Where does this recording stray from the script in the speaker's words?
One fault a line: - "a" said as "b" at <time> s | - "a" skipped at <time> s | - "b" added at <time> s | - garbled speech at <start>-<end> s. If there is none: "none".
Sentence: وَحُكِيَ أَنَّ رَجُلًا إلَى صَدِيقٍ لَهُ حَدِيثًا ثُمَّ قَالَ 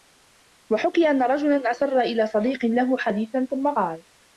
- "أَسَرَّ" added at 1.7 s